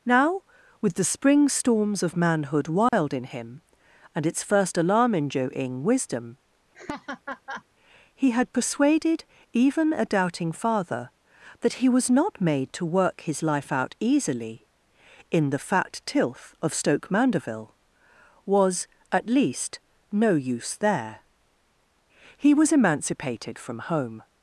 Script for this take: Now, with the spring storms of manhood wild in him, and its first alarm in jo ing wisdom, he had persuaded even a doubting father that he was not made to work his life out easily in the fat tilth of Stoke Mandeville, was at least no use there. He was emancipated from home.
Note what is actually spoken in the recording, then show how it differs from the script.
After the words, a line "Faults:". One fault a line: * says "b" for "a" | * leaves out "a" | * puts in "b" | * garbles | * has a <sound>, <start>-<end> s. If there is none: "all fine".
Now, with the spring storms of manhood wild in him, and its first alarm in jo ing wisdom, he had persuaded even a doubting father that he was not made to work his life out easily in the fat tilth of Stoke Mandeville, was at least no use there. He was emancipated from home.
Faults:
* has a dropout, 2.9-2.9 s
* has a laugh, 6.7-7.6 s